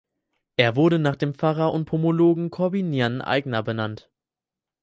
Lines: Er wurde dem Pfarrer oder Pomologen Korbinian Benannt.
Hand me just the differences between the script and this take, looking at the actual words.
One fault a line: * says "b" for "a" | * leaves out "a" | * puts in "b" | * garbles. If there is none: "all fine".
* puts in "nach"
* says "und" for "oder"
* puts in "Aigner"